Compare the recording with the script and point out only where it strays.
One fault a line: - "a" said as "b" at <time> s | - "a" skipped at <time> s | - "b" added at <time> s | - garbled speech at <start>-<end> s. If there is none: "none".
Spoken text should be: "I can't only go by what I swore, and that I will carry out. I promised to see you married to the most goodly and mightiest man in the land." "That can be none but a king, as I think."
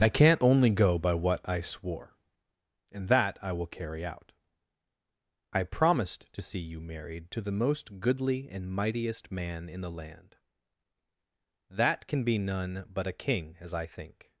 none